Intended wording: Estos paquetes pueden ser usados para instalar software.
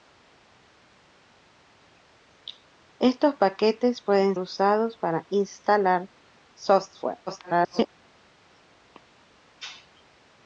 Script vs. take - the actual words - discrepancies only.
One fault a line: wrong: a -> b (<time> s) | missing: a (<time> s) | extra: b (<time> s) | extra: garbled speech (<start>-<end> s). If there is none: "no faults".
missing: ser (4.3 s)
extra: garbled speech (7.3-7.9 s)